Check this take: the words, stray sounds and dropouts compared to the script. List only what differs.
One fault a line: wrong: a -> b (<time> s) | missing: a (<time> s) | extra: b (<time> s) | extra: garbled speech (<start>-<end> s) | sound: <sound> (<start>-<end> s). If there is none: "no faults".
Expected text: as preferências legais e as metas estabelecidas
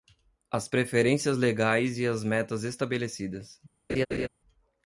sound: laugh (3.9-4.3 s)